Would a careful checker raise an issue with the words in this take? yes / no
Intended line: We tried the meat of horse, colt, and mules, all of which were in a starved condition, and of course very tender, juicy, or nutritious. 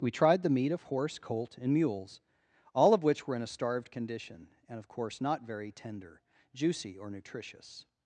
yes